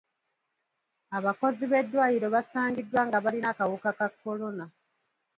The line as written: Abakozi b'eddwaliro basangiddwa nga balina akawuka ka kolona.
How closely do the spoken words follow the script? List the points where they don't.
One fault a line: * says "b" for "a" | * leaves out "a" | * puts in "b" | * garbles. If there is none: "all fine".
all fine